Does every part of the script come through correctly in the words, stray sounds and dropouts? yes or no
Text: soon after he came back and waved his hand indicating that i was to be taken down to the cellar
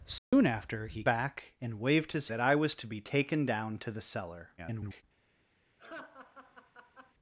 no